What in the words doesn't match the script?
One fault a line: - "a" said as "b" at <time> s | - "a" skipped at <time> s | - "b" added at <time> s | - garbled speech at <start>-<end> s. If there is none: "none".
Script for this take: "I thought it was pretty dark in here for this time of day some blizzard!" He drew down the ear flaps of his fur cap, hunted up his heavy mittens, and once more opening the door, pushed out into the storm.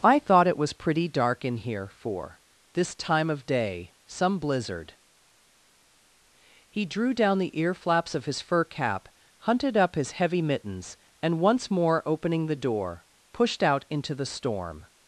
none